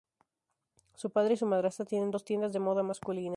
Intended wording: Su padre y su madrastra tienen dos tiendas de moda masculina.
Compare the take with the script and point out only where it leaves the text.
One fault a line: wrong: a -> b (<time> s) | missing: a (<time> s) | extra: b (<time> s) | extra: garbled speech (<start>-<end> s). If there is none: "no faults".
no faults